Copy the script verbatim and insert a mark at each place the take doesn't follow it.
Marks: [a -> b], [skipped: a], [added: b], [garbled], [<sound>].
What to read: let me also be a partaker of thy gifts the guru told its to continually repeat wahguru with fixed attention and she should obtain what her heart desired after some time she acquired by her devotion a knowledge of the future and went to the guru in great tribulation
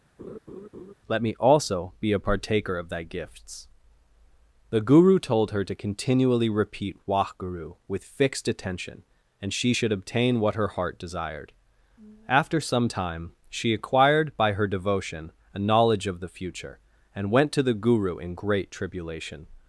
[laugh] let me also be a partaker of thy gifts the guru told [its -> her] to continually repeat wahguru with fixed attention and she should obtain what her heart desired after some time she acquired by her devotion a knowledge of the future and went to the guru in great tribulation